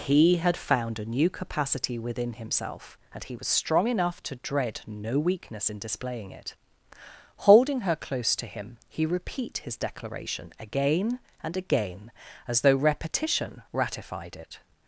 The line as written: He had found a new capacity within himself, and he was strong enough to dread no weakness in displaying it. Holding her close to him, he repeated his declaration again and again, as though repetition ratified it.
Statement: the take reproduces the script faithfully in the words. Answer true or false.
false